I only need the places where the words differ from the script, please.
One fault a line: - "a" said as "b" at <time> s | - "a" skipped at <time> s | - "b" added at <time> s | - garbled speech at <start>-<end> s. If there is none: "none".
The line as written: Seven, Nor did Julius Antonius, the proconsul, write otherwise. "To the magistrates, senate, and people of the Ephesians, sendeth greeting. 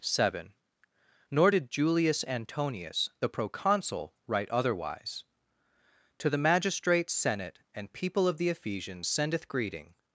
none